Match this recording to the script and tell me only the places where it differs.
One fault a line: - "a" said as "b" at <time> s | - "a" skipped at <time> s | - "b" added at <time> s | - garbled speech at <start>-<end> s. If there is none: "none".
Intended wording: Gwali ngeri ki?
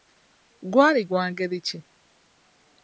- "gwa" added at 1.1 s